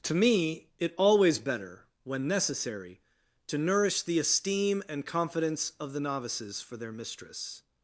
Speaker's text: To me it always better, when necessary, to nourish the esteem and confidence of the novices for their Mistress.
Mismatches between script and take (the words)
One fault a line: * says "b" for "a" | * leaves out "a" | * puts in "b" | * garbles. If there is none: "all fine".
all fine